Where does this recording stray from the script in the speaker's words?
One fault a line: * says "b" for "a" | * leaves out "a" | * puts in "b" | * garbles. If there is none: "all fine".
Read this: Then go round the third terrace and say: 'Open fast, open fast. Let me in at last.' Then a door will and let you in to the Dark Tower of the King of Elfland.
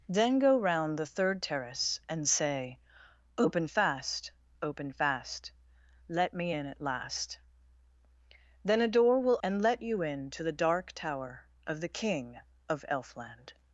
all fine